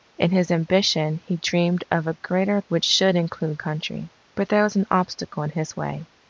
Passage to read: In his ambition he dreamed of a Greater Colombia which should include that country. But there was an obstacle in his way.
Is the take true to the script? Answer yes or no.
no